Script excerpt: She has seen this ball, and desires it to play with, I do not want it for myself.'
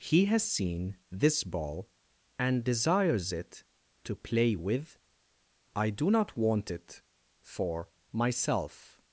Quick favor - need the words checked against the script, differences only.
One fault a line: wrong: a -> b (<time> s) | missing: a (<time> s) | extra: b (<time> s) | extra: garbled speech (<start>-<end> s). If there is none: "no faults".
wrong: She -> He (0.0 s)